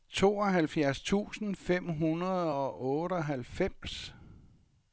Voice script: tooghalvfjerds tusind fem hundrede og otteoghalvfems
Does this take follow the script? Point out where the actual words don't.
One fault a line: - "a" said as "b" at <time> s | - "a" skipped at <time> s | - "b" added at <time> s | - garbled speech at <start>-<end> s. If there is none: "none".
none